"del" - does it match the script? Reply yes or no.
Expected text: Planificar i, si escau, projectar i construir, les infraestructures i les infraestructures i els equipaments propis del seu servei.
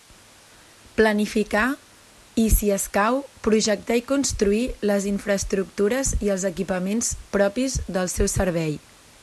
yes